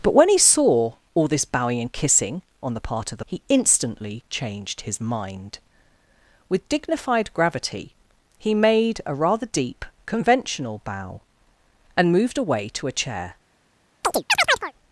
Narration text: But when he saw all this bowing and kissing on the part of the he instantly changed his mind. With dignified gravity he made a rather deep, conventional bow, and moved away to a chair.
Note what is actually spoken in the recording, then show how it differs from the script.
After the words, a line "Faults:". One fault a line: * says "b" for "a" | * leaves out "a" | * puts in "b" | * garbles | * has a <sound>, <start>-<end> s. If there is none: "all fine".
But when he saw all this bowing and kissing on the part of the he instantly changed his mind. With dignified gravity he made a rather deep, conventional bow, and moved away to a chair.
Faults:
* has a chirp, 14.0-14.7 s